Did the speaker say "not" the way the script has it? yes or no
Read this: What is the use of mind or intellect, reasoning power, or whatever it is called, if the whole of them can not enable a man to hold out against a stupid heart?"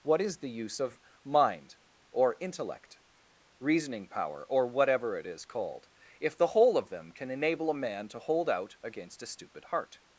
no